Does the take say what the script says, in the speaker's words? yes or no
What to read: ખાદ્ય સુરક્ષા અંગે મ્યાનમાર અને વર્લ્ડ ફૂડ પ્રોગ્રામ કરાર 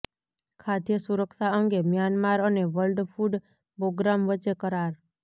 no